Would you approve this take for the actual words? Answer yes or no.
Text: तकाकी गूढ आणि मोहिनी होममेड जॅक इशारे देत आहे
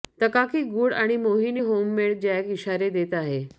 yes